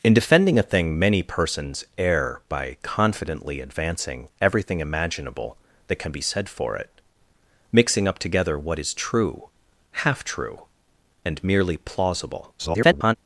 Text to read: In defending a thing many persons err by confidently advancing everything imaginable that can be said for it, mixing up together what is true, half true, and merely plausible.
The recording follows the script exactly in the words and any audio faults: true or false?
false